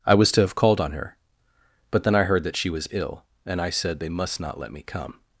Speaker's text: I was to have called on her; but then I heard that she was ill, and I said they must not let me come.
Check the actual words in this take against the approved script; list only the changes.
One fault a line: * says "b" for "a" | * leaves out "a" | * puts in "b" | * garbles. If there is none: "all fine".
all fine